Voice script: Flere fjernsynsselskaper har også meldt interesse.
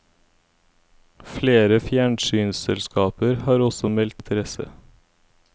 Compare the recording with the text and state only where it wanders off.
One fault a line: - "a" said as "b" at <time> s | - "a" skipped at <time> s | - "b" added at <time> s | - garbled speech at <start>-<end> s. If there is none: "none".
none